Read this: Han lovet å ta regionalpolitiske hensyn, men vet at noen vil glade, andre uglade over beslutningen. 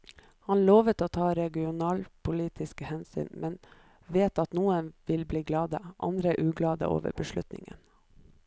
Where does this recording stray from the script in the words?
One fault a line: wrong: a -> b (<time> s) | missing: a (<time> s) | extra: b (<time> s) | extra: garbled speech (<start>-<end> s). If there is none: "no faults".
extra: bli (5.3 s)